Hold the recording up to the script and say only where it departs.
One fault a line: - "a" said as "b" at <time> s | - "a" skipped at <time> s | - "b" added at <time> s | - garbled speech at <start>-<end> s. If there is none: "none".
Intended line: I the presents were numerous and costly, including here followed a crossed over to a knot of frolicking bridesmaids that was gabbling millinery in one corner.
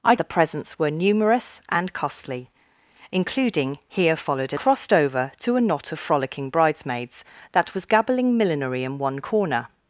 none